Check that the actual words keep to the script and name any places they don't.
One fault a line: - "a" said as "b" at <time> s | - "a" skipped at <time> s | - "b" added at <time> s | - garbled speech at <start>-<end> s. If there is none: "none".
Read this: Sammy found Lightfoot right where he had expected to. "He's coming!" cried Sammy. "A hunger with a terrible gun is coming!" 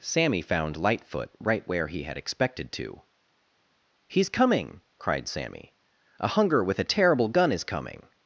none